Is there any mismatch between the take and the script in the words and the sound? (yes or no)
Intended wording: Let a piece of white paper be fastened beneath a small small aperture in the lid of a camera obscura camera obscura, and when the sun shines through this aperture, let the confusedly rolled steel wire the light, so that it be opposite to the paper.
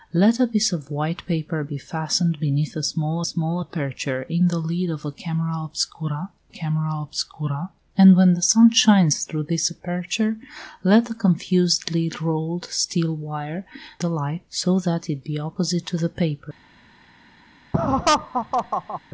yes